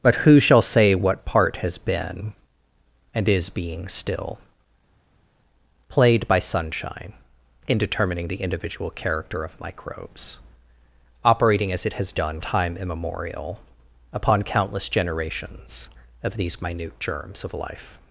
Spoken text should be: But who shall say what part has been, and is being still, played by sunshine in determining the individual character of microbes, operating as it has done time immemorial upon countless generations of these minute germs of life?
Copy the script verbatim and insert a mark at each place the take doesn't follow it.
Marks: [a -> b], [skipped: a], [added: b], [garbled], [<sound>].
But who shall say what part has been, and is being still, played by sunshine in determining the individual character of microbes, operating as it has done time immemorial upon countless generations of these minute germs of life?